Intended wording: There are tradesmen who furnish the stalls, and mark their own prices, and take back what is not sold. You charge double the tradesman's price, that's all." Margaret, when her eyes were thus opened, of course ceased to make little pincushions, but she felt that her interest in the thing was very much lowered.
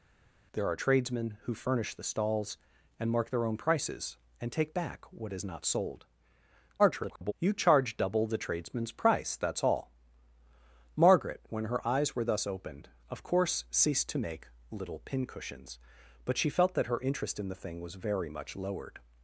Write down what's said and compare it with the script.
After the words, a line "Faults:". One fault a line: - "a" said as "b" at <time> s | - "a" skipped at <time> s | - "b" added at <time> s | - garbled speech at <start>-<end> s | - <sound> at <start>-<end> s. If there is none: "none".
There are tradesmen who furnish the stalls, and mark their own prices, and take back what is not sold. [garbled] You charge double the tradesman's price, that's all." Margaret, when her eyes were thus opened, of course ceased to make little pincushions, but she felt that her interest in the thing was very much lowered.
Faults:
- garbled speech at 6.8-7.3 s